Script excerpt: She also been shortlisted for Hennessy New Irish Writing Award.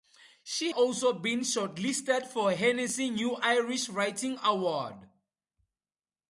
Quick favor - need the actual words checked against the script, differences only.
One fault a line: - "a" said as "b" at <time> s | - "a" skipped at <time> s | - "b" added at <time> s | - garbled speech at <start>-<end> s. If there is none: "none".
none